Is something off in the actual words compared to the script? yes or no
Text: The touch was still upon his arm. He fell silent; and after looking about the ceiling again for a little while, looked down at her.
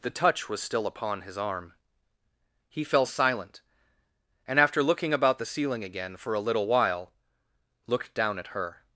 no